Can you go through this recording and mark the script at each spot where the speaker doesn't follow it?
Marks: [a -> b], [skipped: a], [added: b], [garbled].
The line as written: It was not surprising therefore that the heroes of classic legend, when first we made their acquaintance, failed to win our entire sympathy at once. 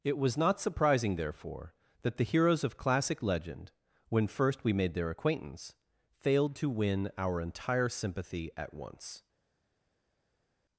It was not surprising therefore that the heroes of classic legend, when first we made their acquaintance, failed to win our entire sympathy at once.